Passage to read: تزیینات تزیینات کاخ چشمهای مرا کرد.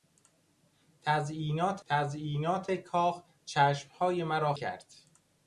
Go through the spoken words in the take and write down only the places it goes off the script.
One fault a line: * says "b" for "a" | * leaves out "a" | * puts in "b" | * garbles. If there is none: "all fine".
all fine